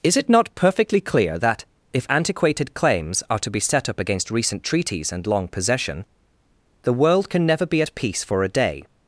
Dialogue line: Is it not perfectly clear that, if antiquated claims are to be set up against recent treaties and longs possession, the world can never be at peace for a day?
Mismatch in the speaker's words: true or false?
true